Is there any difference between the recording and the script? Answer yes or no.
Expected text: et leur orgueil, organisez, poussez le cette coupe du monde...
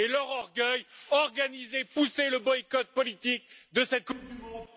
yes